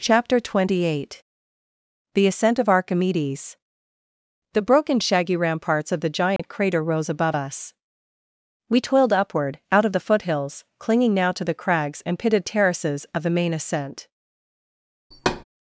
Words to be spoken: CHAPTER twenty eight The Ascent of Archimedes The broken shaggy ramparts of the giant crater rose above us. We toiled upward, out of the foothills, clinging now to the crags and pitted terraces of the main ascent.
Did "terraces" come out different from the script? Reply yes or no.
no